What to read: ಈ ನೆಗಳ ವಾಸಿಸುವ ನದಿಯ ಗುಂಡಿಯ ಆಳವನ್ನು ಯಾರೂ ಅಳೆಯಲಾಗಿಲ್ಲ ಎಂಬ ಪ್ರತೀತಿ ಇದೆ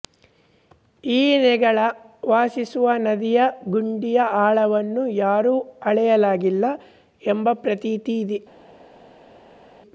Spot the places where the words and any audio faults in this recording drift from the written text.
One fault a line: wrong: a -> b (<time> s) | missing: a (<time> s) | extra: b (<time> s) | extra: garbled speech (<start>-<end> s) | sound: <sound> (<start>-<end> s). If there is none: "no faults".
no faults